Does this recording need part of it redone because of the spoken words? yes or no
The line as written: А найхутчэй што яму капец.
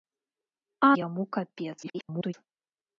yes